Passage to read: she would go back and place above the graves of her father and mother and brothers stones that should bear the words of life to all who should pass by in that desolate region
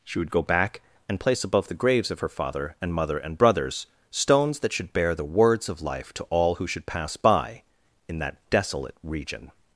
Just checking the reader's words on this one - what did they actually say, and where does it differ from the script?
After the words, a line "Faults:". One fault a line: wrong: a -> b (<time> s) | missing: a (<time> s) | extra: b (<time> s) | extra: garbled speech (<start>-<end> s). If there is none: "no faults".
she would go back and place above the graves of her father and mother and brothers stones that should bear the words of life to all who should pass by in that desolate region
Faults:
no faults